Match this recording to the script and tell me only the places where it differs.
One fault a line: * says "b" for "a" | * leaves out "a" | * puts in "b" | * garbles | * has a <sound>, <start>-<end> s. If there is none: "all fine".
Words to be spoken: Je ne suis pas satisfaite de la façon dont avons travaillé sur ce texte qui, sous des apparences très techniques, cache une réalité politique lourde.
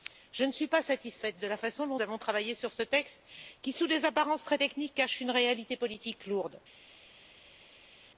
all fine